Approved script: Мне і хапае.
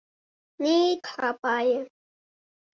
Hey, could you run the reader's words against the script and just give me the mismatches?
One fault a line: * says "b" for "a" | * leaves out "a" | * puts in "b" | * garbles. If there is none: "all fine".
all fine